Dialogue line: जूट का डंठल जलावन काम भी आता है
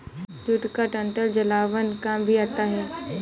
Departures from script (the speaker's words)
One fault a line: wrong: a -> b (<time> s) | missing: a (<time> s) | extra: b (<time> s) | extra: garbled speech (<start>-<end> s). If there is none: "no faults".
no faults